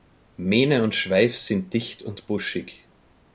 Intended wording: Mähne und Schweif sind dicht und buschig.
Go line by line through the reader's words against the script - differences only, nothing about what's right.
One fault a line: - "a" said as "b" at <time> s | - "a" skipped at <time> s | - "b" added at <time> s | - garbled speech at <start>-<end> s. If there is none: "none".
none